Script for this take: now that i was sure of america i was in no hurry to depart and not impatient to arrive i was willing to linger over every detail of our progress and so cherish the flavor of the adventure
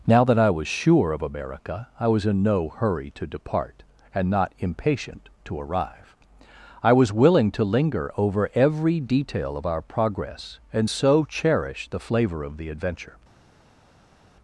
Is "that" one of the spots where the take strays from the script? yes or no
no